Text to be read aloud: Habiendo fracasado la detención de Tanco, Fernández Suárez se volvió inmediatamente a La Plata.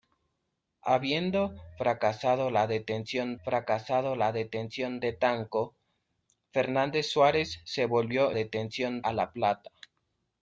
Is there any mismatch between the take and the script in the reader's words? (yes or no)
yes